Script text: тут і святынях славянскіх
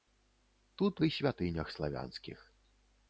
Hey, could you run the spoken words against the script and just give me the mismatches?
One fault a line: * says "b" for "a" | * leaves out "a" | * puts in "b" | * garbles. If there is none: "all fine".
all fine